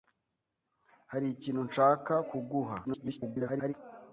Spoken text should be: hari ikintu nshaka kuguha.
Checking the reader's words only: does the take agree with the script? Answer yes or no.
no